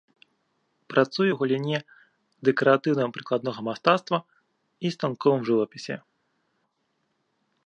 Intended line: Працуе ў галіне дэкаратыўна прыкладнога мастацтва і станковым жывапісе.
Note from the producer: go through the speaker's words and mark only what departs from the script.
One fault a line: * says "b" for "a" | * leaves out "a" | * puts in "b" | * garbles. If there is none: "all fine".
all fine